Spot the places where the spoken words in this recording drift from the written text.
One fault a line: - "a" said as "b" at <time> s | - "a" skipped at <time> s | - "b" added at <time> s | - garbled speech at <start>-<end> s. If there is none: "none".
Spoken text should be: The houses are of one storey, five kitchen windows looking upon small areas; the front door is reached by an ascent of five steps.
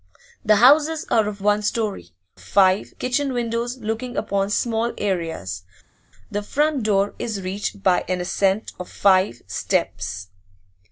none